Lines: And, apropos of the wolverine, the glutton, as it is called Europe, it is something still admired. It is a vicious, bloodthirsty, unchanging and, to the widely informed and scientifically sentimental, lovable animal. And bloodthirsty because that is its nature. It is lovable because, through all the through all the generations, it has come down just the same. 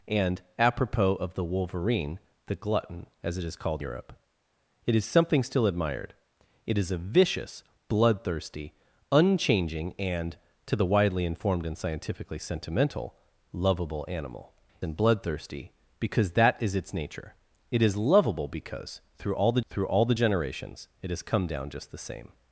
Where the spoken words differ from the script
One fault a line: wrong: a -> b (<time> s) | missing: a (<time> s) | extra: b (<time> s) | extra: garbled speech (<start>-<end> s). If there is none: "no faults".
no faults